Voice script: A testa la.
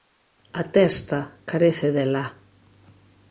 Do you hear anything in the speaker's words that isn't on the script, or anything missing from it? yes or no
yes